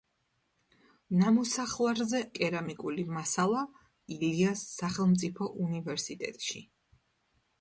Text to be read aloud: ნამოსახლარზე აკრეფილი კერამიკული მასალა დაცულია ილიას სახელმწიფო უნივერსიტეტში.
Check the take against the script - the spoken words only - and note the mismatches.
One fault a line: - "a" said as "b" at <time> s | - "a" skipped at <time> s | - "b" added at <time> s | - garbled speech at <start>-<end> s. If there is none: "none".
- "აკრეფილი" skipped at 2.2 s
- "დაცულია" skipped at 3.6 s